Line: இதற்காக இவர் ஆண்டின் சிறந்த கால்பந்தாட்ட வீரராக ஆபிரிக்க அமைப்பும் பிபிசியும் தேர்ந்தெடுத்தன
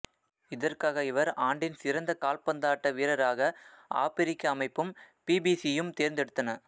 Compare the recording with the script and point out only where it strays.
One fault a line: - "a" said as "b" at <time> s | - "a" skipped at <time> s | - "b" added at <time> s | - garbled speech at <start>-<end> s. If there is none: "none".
none